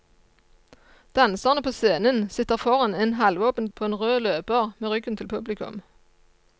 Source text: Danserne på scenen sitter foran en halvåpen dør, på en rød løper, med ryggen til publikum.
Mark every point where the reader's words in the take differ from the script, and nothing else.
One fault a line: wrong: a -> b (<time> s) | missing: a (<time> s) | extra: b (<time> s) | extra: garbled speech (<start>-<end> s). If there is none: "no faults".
missing: dør (3.7 s)